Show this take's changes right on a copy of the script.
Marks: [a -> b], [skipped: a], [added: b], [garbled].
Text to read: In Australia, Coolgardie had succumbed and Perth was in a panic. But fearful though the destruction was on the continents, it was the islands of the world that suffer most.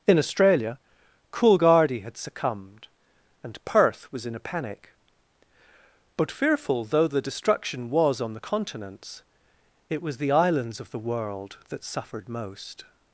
In Australia, Coolgardie had succumbed and Perth was in a panic. But fearful though the destruction was on the continents, it was the islands of the world that [suffer -> suffered] most.